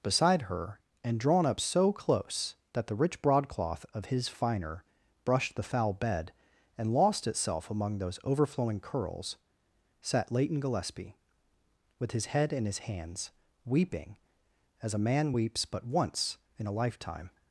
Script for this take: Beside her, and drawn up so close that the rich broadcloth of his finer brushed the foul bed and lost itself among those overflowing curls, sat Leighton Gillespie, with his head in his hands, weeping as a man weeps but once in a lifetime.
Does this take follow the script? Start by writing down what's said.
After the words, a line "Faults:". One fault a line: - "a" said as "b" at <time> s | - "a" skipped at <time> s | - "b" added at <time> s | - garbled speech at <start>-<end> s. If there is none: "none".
Beside her, and drawn up so close that the rich broadcloth of his finer brushed the foul bed and lost itself among those overflowing curls, sat Leighton Gillespie, with his head in his hands, weeping as a man weeps but once in a lifetime.
Faults:
none